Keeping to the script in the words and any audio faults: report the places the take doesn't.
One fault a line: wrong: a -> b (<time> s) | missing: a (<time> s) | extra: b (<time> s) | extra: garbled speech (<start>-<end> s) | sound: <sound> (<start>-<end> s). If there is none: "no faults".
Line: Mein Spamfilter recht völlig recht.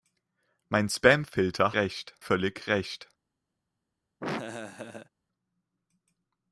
sound: laugh (4.2-5.1 s)